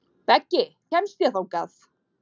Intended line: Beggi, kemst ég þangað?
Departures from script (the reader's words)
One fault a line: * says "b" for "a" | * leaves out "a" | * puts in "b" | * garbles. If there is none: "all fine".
all fine